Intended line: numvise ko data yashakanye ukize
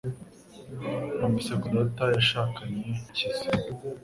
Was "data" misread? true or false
false